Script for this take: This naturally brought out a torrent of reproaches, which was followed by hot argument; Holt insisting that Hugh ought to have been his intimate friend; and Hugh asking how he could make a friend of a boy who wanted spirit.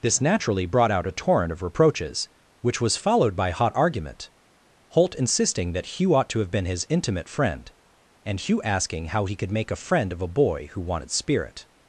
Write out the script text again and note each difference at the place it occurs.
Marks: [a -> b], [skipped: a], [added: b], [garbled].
This naturally brought out a torrent of reproaches, which was followed by hot argument; Holt insisting that Hugh ought to have been his intimate friend; and Hugh asking how he could make a friend of a boy who wanted spirit.